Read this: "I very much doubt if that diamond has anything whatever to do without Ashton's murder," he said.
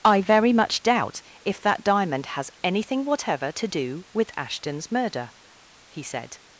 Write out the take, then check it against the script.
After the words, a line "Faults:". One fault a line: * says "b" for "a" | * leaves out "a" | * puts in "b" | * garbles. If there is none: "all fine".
"I very much doubt if that diamond has anything whatever to do with Ashton's murder," he said.
Faults:
* says "with" for "without"